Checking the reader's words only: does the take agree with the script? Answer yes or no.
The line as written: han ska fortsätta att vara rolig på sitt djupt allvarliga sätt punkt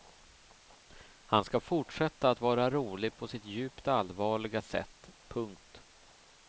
yes